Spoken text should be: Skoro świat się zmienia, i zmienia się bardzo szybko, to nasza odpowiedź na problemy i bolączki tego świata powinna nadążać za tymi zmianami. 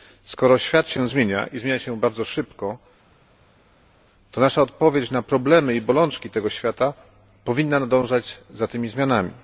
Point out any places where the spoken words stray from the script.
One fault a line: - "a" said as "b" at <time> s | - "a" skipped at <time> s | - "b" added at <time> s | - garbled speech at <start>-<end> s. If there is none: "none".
none